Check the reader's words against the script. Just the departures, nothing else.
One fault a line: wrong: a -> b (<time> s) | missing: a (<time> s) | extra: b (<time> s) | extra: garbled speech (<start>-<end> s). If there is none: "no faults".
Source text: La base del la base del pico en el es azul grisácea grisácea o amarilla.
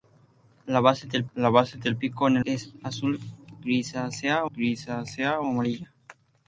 no faults